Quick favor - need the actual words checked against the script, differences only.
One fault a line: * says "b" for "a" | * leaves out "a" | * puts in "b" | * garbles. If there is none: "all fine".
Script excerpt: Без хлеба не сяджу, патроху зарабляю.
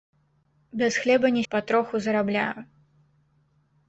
* leaves out "сяджу"